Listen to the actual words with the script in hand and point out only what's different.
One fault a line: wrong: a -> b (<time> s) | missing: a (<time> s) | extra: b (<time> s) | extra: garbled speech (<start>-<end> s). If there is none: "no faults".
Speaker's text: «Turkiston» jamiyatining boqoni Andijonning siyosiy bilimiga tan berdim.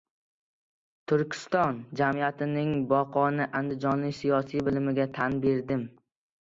no faults